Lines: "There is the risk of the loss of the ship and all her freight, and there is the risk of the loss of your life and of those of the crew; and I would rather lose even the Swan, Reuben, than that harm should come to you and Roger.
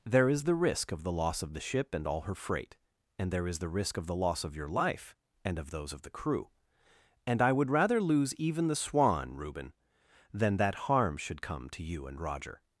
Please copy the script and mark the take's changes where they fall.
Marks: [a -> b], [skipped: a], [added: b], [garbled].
"There is the risk of the loss of the ship and all her freight, and there is the risk of the loss of your life and of those of the crew; and I would rather lose even the Swan, Reuben, than that harm should come to you and Roger.